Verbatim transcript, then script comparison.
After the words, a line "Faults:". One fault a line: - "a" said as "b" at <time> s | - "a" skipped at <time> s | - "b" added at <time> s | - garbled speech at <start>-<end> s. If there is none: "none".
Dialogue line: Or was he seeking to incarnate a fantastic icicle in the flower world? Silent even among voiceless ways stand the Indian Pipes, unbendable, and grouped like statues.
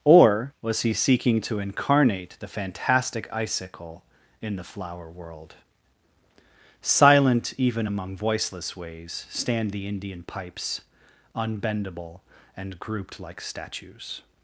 Or was he seeking to incarnate the fantastic icicle in the flower world? Silent even among voiceless ways stand the Indian Pipes, unbendable, and grouped like statues.
Faults:
- "a" said as "the" at 2.4 s